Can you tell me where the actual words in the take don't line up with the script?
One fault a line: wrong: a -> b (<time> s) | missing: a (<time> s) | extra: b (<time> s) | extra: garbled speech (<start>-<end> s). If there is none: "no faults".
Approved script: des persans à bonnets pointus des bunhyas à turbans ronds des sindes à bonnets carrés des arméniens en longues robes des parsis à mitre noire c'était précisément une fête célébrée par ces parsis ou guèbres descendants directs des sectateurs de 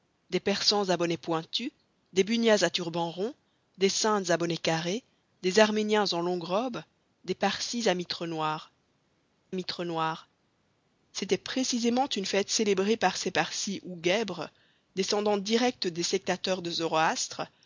extra: mitre noire (9.5 s)